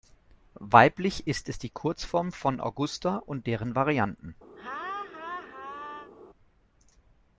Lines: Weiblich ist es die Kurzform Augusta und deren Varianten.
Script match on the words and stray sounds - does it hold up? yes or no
no